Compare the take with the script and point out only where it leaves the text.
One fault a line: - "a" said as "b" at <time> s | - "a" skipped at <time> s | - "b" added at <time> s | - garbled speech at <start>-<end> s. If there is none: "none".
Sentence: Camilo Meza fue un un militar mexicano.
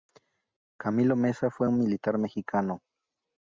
- "un" skipped at 1.8 s